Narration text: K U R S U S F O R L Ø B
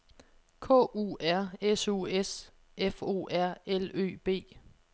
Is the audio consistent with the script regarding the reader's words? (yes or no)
yes